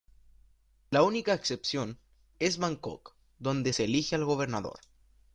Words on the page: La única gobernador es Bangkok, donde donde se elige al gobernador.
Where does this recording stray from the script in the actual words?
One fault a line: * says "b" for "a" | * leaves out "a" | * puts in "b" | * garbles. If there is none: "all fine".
* says "excepción" for "gobernador"
* leaves out "donde"